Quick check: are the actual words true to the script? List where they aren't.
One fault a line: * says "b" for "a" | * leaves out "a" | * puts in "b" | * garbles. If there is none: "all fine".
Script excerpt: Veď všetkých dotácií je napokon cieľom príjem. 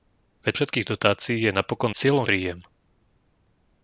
all fine